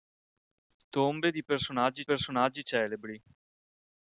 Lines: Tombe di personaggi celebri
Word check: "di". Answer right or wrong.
right